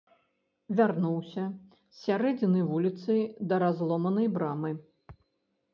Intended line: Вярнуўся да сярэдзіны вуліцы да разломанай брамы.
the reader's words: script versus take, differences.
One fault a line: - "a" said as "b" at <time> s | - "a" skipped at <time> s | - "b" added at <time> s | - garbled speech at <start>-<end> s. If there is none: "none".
- "да" said as "з" at 1.5 s